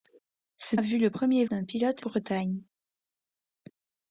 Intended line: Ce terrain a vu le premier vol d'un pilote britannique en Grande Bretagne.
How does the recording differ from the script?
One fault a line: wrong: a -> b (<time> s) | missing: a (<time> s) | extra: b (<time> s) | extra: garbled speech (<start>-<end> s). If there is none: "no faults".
missing: terrain (0.8 s)
missing: vol (1.4 s)
missing: britannique en Grande (2.0 s)